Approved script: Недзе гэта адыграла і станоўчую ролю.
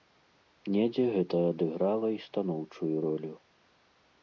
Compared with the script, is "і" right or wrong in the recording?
right